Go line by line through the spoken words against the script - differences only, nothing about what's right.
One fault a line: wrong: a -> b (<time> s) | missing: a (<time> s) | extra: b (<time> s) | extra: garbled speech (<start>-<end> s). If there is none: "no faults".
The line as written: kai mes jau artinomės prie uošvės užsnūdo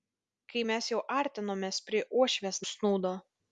no faults